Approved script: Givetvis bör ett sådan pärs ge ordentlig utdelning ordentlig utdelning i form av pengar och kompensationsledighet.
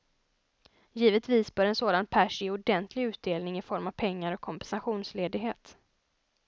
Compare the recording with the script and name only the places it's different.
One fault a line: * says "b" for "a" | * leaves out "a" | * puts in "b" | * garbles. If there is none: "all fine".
* says "en" for "ett"
* leaves out "ordentlig utdelning"